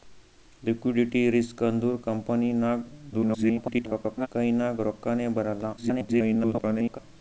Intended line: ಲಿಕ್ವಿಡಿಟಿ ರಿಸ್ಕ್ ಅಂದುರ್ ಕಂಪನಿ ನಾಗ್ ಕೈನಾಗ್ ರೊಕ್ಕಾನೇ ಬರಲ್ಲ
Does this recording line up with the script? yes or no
no